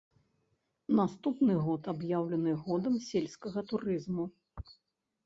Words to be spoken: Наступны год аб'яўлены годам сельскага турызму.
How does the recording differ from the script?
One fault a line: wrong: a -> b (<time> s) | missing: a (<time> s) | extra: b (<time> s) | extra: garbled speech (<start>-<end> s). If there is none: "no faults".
no faults